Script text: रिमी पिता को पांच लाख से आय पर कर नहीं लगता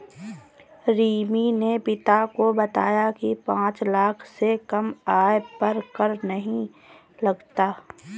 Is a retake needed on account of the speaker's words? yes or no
yes